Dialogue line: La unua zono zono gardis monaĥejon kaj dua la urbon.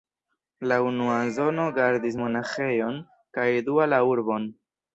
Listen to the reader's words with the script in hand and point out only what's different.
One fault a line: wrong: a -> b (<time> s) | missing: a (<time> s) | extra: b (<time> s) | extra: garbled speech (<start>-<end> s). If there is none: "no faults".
missing: zono (1.7 s)